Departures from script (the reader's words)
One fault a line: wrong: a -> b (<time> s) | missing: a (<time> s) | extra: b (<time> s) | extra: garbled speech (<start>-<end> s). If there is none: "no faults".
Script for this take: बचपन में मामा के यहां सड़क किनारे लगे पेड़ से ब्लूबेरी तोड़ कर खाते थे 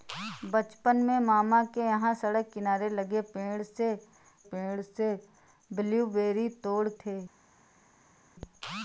extra: पेड़ से (4.5 s)
missing: कर खाते (6.9 s)